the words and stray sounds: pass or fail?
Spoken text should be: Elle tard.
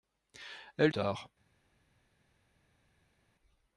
pass